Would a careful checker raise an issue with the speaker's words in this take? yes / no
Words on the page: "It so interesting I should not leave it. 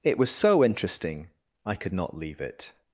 yes